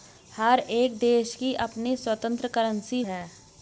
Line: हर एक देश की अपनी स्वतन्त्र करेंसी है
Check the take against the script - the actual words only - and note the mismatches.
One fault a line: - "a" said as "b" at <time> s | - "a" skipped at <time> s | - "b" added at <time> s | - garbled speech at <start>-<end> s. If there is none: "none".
none